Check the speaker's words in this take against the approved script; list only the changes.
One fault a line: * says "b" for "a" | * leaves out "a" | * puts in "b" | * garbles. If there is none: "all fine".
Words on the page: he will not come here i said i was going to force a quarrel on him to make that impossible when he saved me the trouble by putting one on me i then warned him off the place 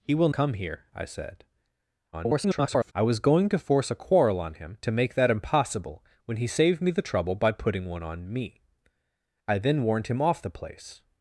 * leaves out "not"
* garbles